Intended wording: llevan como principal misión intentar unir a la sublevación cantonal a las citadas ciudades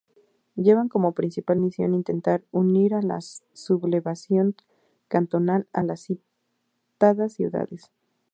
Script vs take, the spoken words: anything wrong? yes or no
no